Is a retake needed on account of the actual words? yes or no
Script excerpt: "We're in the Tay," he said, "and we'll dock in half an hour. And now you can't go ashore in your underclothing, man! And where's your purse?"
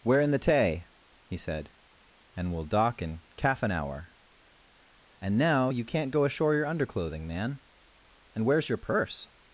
yes